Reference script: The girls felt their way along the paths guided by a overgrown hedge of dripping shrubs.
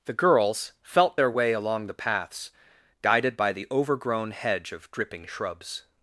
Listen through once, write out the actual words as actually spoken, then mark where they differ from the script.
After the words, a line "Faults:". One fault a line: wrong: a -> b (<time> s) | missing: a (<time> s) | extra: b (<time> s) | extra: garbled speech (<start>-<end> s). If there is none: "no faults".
The girls felt their way along the paths guided by the overgrown hedge of dripping shrubs.
Faults:
wrong: a -> the (3.5 s)